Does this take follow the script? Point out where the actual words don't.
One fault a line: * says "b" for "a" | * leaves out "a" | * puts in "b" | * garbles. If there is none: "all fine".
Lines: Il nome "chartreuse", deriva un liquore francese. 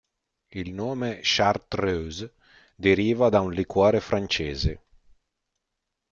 * puts in "da"